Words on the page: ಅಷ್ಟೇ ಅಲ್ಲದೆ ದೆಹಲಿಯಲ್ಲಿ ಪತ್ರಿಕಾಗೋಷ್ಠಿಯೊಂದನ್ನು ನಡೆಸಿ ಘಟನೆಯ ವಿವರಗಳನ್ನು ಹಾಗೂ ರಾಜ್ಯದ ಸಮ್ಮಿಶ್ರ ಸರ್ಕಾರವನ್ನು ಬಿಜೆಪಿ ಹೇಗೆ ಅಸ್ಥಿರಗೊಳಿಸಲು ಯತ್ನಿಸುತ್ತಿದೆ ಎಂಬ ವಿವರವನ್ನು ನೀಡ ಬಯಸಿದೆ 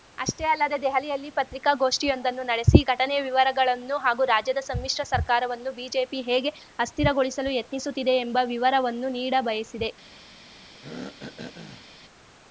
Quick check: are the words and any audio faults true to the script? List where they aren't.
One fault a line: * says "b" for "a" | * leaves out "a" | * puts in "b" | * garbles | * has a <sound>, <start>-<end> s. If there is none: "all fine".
* has a throat clearing, 10.8-11.9 s